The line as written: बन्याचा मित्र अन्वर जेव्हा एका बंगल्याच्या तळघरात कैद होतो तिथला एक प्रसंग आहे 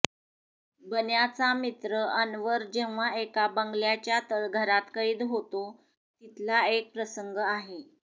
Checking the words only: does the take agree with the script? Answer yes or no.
yes